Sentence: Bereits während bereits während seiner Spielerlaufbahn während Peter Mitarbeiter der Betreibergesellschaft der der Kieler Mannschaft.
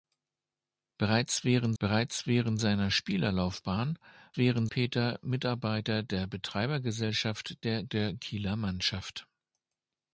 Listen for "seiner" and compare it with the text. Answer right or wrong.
right